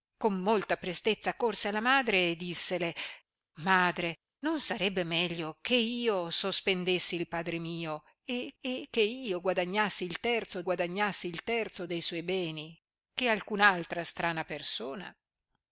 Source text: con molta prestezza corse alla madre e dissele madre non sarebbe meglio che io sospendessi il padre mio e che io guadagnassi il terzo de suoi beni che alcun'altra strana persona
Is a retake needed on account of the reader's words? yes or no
yes